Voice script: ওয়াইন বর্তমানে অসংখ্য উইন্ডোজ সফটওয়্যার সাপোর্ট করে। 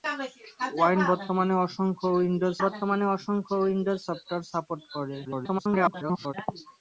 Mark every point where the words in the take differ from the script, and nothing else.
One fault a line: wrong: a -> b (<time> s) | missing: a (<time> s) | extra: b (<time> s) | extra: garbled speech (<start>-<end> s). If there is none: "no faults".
extra: বর্তমানে অসংখ্য উইন্ডোজ (2.6 s)
extra: garbled speech (5.2-6.3 s)